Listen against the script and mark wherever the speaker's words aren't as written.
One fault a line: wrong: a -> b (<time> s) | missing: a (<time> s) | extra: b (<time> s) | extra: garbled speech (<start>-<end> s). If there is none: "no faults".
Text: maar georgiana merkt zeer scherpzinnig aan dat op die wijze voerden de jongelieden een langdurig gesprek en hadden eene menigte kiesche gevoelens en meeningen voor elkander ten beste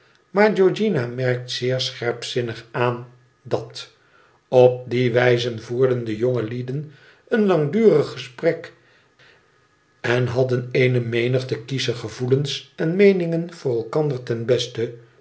no faults